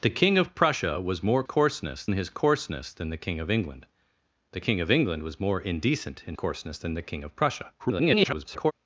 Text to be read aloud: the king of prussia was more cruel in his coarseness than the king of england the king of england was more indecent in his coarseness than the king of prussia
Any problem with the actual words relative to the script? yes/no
yes